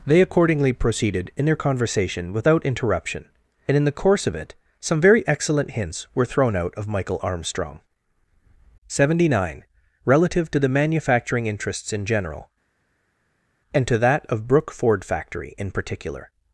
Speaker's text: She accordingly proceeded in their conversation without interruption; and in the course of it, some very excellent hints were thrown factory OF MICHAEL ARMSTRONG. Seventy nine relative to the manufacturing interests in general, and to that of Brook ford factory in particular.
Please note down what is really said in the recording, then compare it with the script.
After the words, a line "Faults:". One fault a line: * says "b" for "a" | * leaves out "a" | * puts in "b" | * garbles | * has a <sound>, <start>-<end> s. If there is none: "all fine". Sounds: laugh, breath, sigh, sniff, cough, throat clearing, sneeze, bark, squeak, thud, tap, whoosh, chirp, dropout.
They accordingly proceeded in their conversation without interruption; and in the course of it, some very excellent hints were thrown out OF MICHAEL ARMSTRONG. Seventy nine relative to the manufacturing interests in general, and to that of Brook ford factory in particular.
Faults:
* says "They" for "She"
* says "out" for "factory"